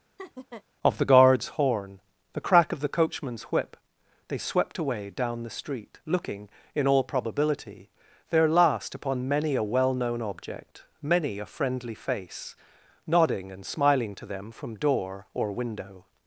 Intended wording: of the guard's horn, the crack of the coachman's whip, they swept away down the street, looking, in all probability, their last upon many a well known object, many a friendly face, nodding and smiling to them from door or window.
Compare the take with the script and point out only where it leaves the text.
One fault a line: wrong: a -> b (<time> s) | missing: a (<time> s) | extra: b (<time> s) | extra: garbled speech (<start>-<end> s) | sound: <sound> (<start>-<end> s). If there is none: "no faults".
sound: laugh (0.2-0.6 s)